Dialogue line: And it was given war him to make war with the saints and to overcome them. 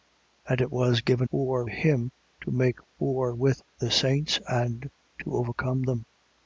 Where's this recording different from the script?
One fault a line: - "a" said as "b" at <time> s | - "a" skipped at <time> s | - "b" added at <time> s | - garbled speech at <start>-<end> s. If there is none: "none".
none